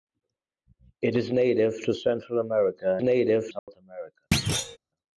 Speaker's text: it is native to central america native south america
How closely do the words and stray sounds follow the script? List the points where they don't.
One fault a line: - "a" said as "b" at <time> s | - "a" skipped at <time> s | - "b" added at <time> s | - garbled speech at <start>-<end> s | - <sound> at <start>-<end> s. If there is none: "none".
- dropout at 3.6-3.7 s
- thud at 4.3-4.8 s